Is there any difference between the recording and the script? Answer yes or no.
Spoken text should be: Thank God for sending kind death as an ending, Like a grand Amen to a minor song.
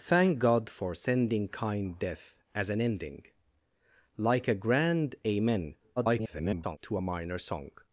yes